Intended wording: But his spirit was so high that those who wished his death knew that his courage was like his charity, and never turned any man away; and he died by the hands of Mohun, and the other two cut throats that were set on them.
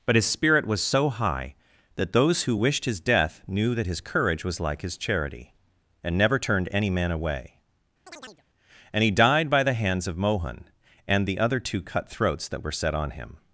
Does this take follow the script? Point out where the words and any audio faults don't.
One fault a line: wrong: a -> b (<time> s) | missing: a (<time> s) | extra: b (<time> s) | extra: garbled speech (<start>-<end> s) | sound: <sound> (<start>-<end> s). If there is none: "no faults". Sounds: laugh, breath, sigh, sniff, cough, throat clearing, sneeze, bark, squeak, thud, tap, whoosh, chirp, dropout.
sound: chirp (8.1-8.4 s)
wrong: them -> him (13.1 s)